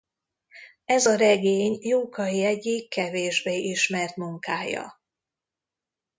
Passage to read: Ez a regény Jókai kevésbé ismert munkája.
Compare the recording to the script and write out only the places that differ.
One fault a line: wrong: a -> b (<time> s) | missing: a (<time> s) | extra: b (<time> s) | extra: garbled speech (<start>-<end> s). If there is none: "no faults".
extra: egyik (2.4 s)